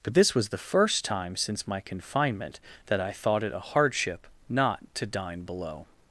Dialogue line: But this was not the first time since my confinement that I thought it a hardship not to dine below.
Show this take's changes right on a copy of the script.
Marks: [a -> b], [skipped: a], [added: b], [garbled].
But this was [skipped: not] the first time since my confinement that I thought it a hardship not to dine below.